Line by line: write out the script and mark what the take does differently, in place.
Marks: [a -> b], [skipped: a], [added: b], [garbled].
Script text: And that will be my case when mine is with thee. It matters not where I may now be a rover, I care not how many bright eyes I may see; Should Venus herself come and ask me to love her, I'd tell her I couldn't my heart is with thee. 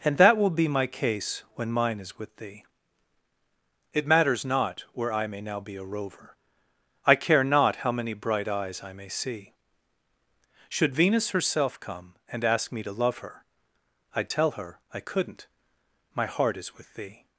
And that will be my case when mine is with thee. It matters not where I may now be a rover, I care not how many bright eyes I may see; Should Venus herself come and ask me to love her, I'd tell her I couldn't my heart is with thee.